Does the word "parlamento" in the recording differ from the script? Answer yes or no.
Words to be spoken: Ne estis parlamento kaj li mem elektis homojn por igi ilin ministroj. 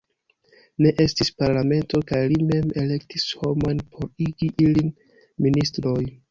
no